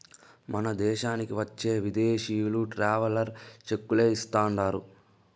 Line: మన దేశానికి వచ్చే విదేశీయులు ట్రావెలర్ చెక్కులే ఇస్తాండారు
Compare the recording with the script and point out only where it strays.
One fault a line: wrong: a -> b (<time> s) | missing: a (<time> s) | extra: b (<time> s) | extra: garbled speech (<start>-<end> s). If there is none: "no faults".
no faults